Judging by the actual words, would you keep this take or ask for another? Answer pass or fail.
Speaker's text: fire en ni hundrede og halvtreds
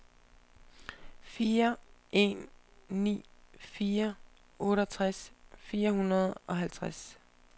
fail